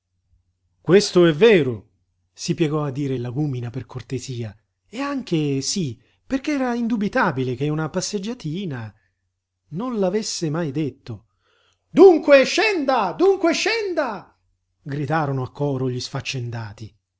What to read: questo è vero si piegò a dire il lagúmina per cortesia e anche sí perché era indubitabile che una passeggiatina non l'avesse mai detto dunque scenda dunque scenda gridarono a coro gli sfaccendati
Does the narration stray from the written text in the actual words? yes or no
no